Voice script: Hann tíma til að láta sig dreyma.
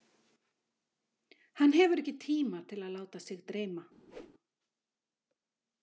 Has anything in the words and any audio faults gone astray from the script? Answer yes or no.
yes